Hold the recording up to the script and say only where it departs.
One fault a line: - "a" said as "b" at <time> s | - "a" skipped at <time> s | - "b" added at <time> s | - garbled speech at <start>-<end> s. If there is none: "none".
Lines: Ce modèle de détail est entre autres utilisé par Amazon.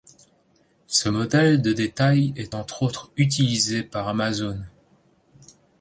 none